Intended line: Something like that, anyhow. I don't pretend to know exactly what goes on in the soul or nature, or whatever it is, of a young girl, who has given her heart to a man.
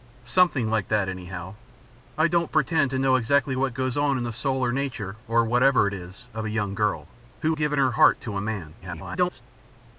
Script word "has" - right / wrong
wrong